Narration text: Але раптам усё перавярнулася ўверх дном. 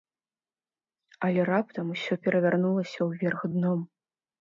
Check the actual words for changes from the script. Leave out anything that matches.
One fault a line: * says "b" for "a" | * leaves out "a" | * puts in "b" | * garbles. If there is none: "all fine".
all fine